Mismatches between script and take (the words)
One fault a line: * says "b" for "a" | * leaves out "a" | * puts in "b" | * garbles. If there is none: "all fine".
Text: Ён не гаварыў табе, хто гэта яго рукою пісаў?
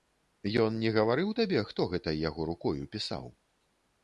all fine